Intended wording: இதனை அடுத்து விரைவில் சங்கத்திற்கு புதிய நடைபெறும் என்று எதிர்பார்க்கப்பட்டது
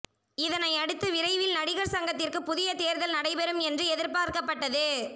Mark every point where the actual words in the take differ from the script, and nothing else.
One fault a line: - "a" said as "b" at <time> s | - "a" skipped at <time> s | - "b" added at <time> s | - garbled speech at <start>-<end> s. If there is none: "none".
- "நடிகர்" added at 1.6 s
- "தேர்தல்" added at 2.8 s